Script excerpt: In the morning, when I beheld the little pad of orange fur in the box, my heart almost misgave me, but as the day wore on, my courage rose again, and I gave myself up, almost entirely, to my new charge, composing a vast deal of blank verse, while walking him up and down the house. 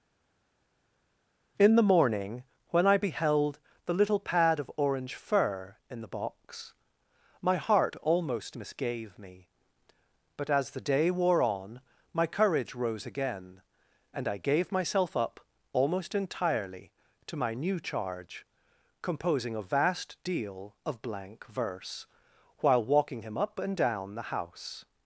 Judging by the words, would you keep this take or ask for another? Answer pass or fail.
pass